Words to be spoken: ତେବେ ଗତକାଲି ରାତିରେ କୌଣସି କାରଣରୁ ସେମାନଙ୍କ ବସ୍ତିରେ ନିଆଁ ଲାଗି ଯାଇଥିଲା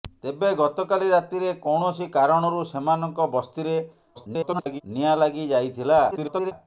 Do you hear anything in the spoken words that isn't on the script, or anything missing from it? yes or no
yes